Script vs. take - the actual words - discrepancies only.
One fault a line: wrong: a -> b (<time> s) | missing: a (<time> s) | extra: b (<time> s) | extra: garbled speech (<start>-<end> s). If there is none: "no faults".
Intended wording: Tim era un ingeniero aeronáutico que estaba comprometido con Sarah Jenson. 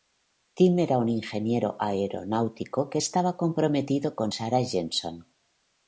no faults